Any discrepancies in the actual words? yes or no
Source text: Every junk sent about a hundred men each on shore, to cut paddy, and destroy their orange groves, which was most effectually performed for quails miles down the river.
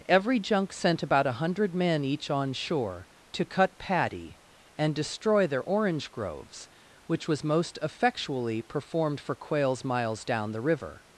no